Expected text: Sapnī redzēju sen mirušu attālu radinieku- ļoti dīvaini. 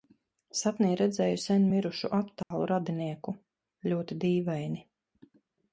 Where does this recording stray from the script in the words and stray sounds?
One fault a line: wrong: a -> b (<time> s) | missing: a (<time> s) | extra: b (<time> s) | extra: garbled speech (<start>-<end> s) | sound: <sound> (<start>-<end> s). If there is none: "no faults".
sound: dropout (2.4-2.5 s)